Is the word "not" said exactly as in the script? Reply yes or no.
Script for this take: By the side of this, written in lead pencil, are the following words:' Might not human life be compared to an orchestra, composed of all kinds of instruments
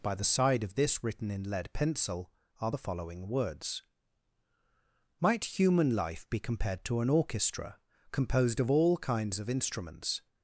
no